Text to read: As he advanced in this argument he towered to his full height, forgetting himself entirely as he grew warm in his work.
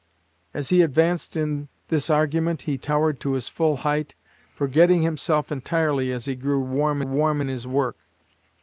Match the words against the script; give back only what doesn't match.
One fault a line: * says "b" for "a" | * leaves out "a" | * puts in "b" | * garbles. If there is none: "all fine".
* puts in "warm"